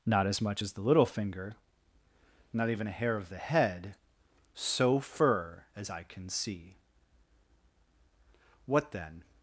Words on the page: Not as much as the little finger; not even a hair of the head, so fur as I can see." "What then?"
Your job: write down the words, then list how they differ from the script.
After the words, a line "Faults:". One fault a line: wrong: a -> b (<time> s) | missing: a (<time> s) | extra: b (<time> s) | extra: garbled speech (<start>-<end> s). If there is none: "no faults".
Not as much as the little finger; not even a hair of the head, so fur as I can see." "What then?"
Faults:
no faults